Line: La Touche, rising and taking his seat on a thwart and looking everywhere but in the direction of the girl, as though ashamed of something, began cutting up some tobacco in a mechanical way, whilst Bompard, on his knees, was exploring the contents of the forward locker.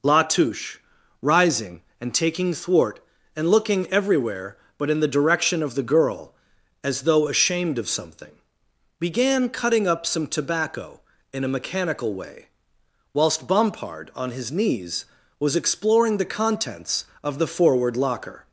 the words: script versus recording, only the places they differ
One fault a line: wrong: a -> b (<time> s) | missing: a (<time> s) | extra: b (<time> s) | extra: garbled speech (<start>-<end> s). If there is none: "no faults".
missing: his seat on a (2.5 s)